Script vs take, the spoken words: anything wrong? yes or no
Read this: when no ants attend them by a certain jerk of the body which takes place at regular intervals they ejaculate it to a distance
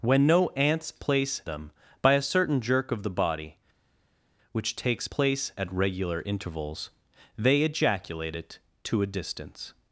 yes